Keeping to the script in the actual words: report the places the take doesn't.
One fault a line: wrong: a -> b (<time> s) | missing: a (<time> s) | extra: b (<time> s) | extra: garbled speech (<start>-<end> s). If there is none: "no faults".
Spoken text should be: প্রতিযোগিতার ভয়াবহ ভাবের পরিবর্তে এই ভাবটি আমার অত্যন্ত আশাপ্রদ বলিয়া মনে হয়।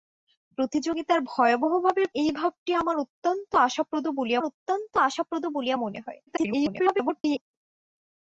missing: পরিবর্তে (2.1 s)
extra: অত্যন্ত আশাপ্রদ বলিয়া (4.4 s)
extra: garbled speech (6.3-7.4 s)